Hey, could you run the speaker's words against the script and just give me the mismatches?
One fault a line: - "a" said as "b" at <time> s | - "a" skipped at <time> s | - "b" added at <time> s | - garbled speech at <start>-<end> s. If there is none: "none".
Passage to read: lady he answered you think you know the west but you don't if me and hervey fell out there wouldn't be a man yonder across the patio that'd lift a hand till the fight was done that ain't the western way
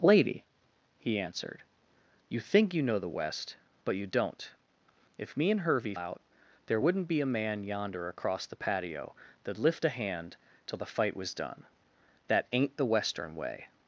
- "fell" skipped at 5.9 s